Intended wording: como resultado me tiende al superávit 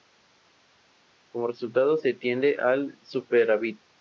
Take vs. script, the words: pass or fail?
fail